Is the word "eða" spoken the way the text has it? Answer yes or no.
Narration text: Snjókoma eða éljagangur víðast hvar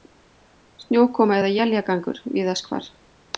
yes